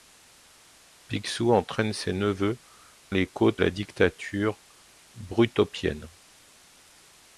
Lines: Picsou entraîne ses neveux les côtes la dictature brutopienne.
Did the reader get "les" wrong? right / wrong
right